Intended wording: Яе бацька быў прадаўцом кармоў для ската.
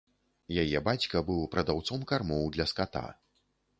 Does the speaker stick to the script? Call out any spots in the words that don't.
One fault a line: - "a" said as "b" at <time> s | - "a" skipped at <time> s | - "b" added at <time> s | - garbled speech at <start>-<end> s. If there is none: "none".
none